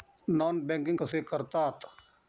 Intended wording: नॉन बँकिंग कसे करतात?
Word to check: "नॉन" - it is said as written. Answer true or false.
true